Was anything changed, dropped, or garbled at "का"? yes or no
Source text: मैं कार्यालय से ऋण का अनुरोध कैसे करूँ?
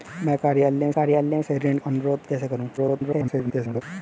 yes